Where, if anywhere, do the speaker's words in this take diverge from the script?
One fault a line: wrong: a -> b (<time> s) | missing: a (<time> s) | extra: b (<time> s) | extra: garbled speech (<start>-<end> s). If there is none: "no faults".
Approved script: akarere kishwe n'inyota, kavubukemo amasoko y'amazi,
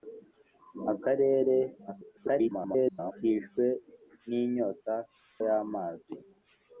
extra: garbled speech (1.9-3.1 s)
missing: kavubukemo amasoko (4.9 s)